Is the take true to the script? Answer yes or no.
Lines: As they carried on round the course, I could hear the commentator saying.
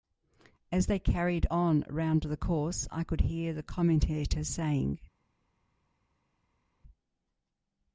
yes